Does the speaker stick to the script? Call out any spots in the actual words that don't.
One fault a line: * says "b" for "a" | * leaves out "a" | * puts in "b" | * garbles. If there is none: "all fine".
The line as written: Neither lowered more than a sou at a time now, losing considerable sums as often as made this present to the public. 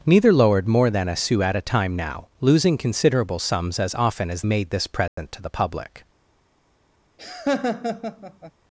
all fine